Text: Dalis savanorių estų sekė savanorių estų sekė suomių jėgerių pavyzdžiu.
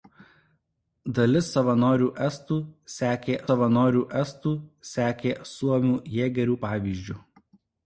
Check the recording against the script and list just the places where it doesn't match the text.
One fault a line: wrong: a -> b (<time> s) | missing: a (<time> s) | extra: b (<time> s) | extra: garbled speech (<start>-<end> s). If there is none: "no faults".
no faults